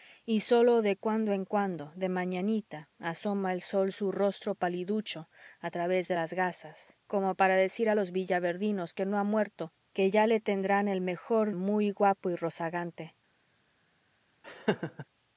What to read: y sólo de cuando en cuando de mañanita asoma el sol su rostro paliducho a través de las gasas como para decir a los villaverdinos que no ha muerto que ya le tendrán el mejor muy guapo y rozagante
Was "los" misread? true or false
false